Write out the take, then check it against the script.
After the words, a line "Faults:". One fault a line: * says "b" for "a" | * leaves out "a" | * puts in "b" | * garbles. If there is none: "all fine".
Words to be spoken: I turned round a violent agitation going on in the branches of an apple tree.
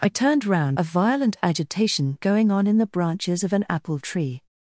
I turned round a violent agitation going on in the branches of an apple tree.
Faults:
all fine